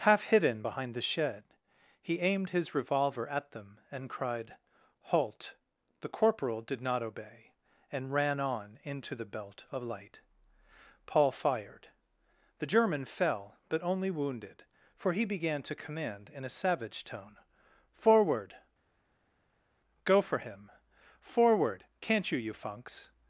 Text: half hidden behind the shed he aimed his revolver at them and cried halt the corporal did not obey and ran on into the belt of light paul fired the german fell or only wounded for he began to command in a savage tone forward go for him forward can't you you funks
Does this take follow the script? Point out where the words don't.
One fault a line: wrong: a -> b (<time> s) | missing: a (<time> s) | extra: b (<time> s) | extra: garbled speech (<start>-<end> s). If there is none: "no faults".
wrong: or -> but (13.7 s)